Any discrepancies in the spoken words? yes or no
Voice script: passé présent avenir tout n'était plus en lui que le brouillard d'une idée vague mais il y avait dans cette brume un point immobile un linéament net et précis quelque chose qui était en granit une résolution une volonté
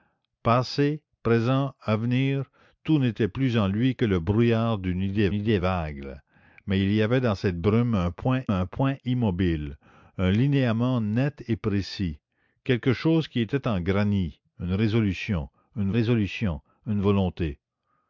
yes